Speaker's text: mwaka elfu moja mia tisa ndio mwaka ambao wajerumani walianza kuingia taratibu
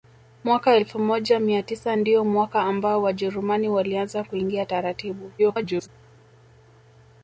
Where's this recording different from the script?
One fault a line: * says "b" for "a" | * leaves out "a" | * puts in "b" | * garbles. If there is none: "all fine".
* garbles